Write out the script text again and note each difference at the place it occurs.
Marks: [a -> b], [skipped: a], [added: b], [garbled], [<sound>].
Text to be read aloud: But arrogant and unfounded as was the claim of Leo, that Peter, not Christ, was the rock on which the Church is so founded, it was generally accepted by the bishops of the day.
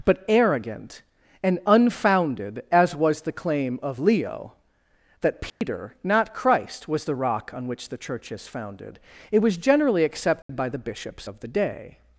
But arrogant and unfounded as was the claim of Leo, that Peter, [dropout] not Christ, was the rock on which the Church is [skipped: so] founded, it was generally accepted [dropout] by the bishops of the day.